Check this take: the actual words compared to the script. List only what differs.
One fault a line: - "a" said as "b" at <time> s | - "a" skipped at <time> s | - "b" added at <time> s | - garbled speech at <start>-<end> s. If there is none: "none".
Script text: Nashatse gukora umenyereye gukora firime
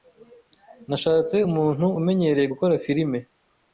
- "gukora" said as "umuntu" at 1.5 s